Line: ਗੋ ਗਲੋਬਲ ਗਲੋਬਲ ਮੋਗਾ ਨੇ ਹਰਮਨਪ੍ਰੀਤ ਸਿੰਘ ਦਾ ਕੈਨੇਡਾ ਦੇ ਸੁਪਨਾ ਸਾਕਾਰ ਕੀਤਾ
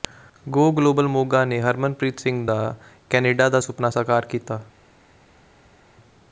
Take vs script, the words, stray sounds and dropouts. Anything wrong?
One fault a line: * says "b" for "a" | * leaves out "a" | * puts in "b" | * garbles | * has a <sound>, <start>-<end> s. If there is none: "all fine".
* leaves out "ਗਲੋਬਲ"
* says "ਦਾ" for "ਦੇ"